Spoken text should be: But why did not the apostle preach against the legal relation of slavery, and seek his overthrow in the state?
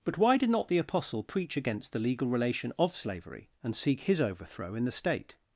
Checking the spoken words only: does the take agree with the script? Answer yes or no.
yes